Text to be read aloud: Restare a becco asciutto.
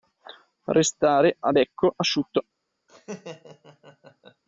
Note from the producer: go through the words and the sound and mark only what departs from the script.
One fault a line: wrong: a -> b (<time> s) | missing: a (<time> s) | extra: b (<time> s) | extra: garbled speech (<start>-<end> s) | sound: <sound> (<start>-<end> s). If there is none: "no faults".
sound: laugh (2.9-4.4 s)